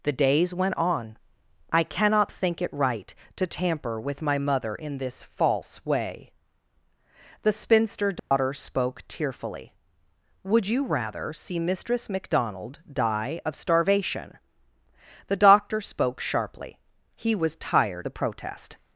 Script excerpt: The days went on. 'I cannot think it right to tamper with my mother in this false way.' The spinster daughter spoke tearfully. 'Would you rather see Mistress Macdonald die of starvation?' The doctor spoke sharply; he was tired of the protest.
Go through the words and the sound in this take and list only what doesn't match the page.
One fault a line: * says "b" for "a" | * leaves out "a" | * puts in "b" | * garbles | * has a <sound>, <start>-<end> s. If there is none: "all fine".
* has a dropout, 8.2-8.3 s
* leaves out "of"